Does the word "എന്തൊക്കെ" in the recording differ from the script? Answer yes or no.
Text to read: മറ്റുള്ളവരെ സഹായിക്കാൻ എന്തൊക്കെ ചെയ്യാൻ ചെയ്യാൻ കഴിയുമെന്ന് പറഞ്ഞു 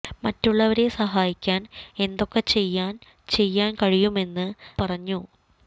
no